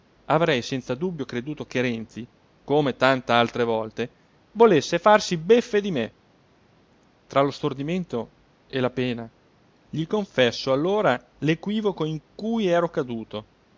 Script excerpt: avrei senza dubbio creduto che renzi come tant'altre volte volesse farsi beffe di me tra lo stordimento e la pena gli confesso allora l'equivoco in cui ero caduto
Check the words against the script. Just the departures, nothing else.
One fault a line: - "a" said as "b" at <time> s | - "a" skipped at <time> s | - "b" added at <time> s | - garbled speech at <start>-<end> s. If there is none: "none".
none